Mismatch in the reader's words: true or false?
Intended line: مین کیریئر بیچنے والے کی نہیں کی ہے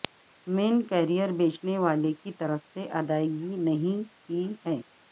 true